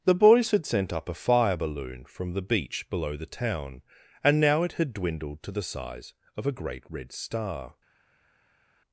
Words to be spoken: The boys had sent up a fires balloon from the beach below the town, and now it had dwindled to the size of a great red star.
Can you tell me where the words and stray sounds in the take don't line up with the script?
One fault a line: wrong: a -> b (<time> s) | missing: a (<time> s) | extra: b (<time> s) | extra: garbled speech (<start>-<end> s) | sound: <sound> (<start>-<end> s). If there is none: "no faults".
wrong: fires -> fire (1.1 s)